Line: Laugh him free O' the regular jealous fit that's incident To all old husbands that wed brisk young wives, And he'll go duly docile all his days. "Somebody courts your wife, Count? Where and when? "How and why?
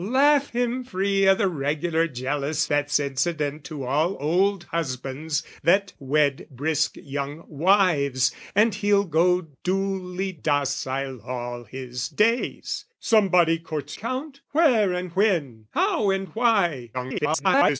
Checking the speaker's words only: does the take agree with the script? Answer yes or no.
no